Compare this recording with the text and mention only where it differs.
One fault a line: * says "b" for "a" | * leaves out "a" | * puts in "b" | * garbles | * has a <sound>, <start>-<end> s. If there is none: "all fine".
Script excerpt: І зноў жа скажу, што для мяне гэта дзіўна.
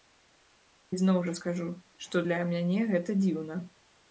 all fine